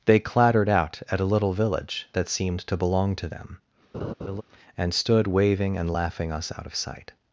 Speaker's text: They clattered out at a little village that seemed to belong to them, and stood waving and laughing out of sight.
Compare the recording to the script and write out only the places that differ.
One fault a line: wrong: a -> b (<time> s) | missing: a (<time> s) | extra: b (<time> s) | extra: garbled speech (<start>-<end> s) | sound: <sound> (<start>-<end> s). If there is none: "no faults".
sound: laugh (3.9-4.4 s)
extra: us (6.3 s)